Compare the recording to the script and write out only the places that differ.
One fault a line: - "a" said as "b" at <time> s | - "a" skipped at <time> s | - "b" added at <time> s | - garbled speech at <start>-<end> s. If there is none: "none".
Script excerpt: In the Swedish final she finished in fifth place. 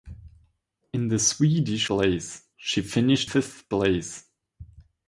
- "final" said as "place" at 1.9 s
- "in" skipped at 3.3 s